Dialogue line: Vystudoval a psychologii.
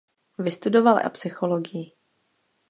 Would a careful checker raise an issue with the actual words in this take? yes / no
no